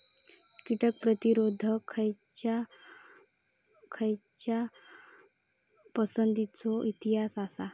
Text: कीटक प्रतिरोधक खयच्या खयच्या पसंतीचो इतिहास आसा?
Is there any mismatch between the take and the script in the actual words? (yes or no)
no